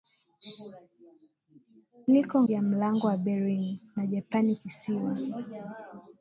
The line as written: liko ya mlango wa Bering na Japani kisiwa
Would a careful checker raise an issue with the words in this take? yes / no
no